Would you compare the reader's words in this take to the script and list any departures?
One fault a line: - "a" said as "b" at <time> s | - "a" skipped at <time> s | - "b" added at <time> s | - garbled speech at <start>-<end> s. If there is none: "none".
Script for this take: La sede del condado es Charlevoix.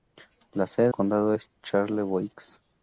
- "del" skipped at 0.9 s